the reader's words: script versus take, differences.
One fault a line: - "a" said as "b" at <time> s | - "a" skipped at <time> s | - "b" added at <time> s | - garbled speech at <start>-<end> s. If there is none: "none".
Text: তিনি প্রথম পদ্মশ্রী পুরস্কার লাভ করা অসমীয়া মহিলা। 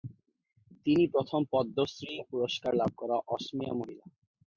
none